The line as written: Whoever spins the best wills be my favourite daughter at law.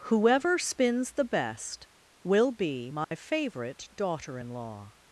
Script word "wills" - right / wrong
wrong